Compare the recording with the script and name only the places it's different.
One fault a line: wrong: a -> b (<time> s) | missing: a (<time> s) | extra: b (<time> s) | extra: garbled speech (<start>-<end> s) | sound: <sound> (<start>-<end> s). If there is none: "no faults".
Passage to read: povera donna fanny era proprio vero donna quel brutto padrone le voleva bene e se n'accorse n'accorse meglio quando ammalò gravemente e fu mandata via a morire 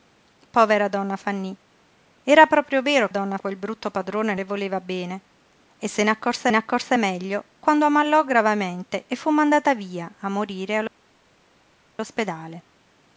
no faults